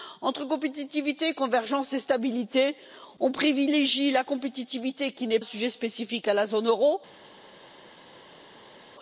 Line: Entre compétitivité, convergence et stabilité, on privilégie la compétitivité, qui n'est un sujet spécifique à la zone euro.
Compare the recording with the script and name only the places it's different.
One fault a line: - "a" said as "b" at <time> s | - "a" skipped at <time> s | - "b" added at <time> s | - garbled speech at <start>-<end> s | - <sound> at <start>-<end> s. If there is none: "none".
none